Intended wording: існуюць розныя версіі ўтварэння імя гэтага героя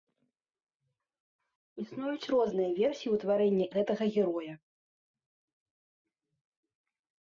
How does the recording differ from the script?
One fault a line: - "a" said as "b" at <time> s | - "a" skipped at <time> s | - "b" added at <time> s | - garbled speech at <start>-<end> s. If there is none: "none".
- "імя" skipped at 3.6 s